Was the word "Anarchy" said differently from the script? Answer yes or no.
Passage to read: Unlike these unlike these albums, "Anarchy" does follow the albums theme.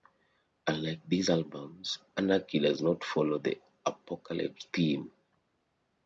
no